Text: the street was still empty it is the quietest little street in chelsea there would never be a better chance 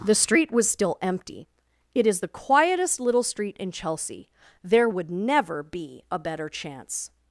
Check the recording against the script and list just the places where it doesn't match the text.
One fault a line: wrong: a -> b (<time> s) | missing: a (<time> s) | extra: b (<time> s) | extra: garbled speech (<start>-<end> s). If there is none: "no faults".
no faults